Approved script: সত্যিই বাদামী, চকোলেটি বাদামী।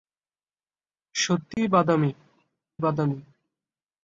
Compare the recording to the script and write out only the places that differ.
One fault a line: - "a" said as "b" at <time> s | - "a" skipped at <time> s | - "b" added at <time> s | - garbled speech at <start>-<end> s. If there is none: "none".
- "চকোলেটি" skipped at 2.1 s